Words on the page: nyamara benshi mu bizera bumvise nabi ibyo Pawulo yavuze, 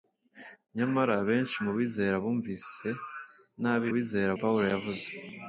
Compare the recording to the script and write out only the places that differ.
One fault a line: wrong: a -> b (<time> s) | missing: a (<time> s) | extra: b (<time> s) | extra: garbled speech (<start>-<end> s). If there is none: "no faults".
wrong: ibyo -> bizera (3.9 s)